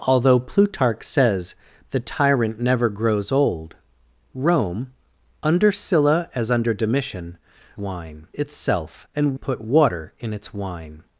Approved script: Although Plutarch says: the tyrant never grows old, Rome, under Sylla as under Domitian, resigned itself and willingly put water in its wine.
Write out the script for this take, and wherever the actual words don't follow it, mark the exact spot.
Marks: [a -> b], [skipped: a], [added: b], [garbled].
Although Plutarch says: the tyrant never grows old, Rome, under Sylla as under Domitian, [resigned -> wine] itself and [skipped: willingly] put water in its wine.